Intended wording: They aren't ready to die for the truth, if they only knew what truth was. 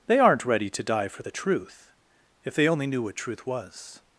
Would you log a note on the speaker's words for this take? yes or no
no